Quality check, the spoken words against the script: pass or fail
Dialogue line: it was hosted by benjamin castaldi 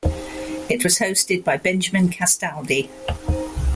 pass